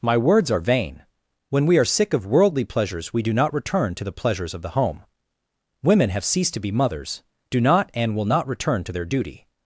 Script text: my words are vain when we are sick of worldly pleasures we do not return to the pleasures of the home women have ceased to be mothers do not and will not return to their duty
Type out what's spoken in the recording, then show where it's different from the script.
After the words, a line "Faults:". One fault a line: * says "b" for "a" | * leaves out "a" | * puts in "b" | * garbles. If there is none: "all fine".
my words are vain when we are sick of worldly pleasures we do not return to the pleasures of the home women have ceased to be mothers do not and will not return to their duty
Faults:
all fine